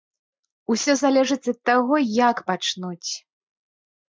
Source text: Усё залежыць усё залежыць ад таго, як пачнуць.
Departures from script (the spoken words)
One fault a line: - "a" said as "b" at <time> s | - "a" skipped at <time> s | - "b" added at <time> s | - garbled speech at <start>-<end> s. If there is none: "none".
- "усё залежыць" skipped at 1.5 s